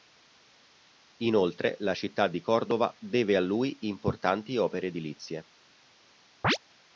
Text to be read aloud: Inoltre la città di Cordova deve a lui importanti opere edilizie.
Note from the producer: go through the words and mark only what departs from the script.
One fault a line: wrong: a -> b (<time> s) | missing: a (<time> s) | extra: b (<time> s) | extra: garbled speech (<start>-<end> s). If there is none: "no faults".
no faults